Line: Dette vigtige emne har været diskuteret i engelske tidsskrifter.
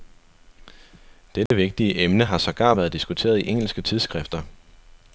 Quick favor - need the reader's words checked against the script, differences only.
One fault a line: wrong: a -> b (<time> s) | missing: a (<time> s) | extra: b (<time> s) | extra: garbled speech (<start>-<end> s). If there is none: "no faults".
extra: sågar (2.4 s)